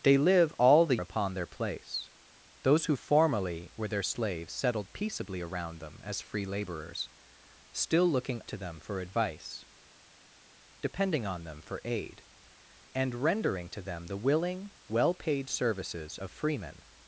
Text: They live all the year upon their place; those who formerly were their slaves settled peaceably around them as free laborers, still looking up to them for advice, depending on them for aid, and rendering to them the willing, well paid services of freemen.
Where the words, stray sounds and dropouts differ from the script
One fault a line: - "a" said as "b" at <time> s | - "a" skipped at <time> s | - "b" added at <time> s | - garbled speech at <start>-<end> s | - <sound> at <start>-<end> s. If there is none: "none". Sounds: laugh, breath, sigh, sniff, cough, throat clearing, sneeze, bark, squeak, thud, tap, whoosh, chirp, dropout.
- "year" skipped at 1.0 s
- "up" skipped at 8.4 s